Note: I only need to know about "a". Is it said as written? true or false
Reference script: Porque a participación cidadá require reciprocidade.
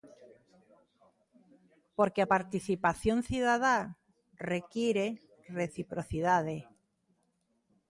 true